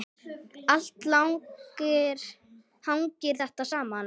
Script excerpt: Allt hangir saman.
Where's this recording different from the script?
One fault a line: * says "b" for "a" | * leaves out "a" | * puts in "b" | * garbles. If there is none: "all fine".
* puts in "þetta"